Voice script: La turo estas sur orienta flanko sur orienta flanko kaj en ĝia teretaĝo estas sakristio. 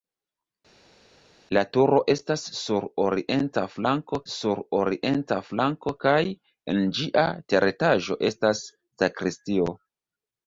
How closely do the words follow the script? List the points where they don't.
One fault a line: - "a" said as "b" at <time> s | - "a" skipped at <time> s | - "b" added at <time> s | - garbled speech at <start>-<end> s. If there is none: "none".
none